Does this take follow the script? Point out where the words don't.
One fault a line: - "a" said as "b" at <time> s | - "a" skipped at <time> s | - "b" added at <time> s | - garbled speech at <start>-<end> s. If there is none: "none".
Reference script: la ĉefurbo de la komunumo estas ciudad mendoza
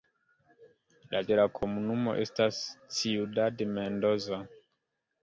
- "ĉefurbo" skipped at 1.2 s